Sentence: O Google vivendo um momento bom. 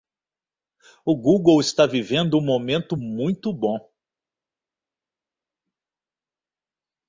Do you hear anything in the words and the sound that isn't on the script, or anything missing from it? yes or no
yes